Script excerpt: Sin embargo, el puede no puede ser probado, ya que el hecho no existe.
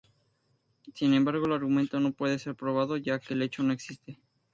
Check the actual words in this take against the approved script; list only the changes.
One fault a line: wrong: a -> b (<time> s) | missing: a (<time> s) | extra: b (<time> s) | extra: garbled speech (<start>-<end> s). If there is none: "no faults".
wrong: puede -> argumento (1.5 s)